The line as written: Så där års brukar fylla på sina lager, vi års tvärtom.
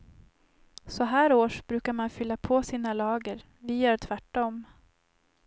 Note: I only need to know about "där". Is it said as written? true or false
false